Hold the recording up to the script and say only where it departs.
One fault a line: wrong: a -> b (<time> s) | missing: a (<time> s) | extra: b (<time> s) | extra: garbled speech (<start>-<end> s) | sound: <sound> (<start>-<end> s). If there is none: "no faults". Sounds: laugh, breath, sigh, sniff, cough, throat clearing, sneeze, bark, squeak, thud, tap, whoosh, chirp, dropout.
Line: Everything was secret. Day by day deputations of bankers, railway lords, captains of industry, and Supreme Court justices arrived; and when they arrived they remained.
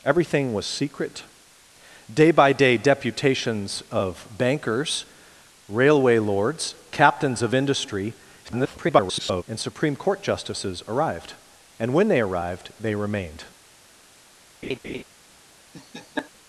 extra: garbled speech (8.4-9.4 s)
sound: laugh (14.6-15.0 s)
sound: laugh (15.7-16.3 s)